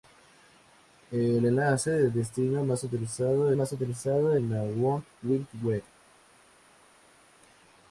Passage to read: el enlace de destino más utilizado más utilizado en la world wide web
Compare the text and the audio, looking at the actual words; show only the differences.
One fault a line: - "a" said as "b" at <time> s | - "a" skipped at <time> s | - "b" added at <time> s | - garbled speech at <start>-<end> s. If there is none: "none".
none